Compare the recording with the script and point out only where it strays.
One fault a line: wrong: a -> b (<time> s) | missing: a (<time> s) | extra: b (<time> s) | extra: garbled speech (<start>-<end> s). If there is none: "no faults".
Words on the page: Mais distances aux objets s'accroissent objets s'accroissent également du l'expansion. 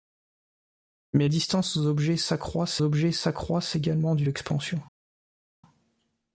no faults